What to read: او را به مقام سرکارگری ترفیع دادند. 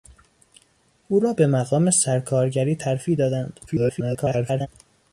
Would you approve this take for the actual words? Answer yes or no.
no